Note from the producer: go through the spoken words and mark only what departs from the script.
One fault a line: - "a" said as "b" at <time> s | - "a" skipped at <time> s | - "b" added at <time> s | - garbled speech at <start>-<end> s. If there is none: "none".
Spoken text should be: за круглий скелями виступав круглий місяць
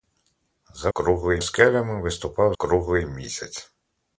none